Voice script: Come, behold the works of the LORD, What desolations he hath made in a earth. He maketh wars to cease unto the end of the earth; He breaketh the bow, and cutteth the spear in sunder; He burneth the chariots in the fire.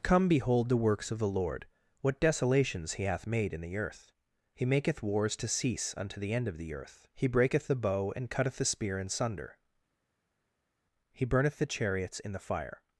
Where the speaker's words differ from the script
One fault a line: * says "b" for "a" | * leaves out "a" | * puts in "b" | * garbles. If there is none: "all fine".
* says "the" for "a"